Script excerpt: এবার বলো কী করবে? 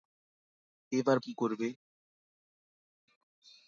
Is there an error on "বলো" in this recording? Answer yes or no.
yes